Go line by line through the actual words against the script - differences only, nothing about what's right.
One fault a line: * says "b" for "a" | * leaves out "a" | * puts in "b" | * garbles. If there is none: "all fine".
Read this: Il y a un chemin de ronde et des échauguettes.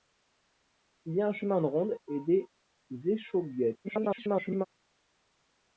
* garbles